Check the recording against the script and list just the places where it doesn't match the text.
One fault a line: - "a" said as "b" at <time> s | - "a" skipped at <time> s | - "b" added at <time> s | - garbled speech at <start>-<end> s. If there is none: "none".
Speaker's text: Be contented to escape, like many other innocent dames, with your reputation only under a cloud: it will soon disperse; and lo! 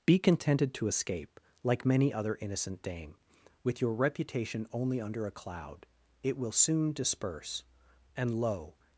- "dames" said as "dame" at 2.8 s